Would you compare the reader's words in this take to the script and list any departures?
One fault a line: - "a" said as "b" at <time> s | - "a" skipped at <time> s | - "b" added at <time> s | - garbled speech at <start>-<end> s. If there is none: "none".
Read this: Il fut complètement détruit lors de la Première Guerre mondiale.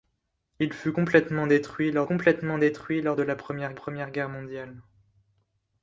- "complètement détruit lors" added at 2.0 s
- "Première" added at 3.7 s